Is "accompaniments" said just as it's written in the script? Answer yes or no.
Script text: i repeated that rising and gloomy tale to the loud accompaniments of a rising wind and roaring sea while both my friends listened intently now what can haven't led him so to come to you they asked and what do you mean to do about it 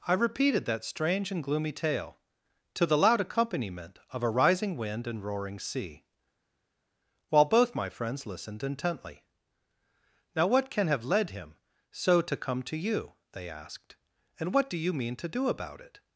no